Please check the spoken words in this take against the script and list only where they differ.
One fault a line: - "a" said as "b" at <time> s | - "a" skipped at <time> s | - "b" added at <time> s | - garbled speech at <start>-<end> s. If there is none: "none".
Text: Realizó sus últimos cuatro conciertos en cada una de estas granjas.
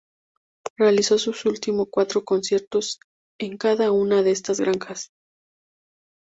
none